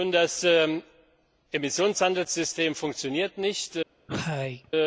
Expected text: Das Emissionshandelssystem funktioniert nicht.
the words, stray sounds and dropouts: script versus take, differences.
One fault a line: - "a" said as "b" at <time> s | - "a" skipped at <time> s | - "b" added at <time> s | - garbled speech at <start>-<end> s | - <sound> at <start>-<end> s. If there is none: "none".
- cough at 4.1-4.7 s